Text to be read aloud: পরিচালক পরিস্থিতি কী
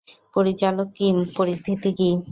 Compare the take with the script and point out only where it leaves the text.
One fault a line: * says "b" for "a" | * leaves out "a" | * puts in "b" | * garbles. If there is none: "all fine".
* puts in "কিম"